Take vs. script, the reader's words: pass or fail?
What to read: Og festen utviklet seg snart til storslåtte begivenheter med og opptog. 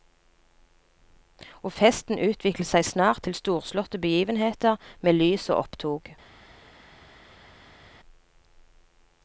fail